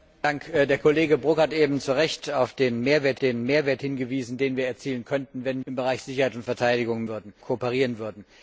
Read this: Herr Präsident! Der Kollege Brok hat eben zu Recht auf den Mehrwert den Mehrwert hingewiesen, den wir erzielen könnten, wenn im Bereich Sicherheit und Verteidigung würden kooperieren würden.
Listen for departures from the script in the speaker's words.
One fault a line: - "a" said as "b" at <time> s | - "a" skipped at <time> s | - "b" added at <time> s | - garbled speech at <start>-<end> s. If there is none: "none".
none